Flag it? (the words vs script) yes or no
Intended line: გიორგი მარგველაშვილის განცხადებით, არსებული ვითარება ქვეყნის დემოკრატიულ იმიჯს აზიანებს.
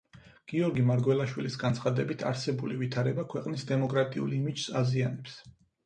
no